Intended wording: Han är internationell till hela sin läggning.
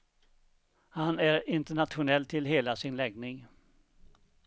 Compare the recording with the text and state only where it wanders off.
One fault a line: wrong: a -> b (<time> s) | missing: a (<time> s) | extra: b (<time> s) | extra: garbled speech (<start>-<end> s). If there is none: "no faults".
no faults